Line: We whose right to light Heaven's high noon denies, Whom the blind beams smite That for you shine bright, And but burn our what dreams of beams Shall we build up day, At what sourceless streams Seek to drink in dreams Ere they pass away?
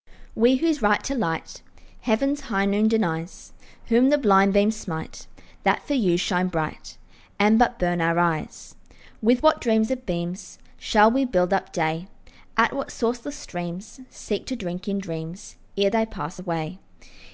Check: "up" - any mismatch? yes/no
no